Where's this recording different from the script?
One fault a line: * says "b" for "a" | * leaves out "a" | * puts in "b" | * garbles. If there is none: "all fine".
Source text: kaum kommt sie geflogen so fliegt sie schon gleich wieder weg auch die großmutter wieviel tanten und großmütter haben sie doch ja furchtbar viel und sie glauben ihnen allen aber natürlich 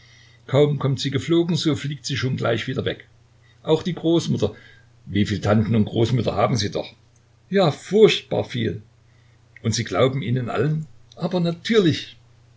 all fine